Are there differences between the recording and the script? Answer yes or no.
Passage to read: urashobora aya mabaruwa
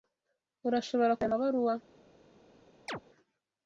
no